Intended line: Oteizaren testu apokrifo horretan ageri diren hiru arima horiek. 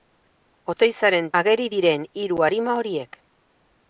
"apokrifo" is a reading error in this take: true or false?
true